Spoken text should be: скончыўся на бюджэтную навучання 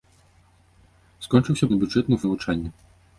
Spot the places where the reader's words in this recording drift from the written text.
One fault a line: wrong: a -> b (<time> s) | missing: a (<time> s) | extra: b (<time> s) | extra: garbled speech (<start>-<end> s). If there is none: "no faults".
no faults